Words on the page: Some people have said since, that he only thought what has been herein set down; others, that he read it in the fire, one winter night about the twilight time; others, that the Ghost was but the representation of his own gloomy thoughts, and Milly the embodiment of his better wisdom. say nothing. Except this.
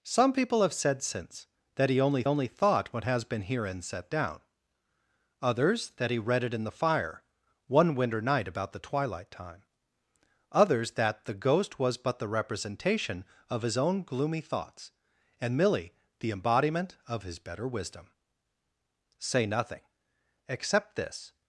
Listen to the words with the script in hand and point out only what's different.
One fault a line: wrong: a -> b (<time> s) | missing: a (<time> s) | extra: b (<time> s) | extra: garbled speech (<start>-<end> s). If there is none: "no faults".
extra: only (2.3 s)